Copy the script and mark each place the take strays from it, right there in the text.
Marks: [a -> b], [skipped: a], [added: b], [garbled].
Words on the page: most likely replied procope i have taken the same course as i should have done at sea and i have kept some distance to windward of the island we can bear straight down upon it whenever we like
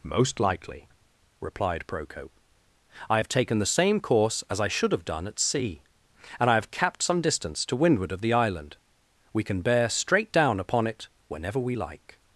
most likely replied procope i have taken the same course as i should have done at sea and i have [kept -> capped] some distance to windward of the island we can bear straight down upon it whenever we like